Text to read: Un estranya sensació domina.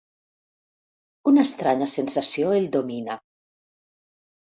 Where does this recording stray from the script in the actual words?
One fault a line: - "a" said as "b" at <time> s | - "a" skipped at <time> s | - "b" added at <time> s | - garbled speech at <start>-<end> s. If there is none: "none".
- "Un" said as "Una" at 1.3 s
- "el" added at 2.6 s